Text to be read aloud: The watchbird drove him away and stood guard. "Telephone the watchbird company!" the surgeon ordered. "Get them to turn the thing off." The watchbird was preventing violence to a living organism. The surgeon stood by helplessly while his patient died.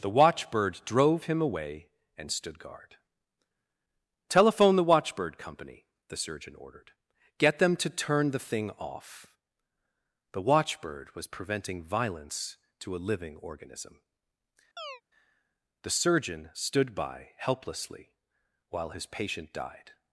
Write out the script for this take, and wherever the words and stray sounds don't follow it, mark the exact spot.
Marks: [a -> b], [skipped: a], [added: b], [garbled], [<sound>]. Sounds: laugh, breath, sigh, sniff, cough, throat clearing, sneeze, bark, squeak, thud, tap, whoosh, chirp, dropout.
The watchbird drove him away and stood guard. "Telephone the watchbird company!" the surgeon ordered. "Get them to turn the thing off." The watchbird was preventing violence to a living organism. [chirp] The surgeon stood by helplessly while his patient died.